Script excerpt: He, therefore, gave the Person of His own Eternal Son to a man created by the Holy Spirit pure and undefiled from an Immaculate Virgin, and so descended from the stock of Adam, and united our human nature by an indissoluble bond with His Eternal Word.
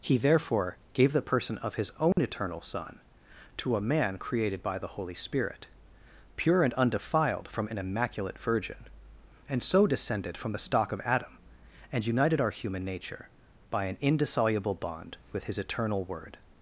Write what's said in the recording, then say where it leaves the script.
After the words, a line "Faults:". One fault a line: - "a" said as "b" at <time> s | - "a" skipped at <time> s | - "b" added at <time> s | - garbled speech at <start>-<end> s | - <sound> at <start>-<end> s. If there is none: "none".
He, therefore, gave the Person of His own Eternal Son to a man created by the Holy Spirit pure and undefiled from an Immaculate Virgin, and so descended from the stock of Adam, and united our human nature by an indissoluble bond with His Eternal Word.
Faults:
- dropout at 2.1-2.2 s